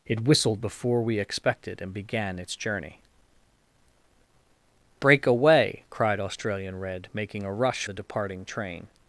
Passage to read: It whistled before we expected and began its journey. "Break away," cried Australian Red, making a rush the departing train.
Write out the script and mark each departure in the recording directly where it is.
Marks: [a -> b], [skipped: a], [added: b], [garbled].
It whistled before we expected and began its journey. "Break away," cried Australian Red, making a rush the departing train.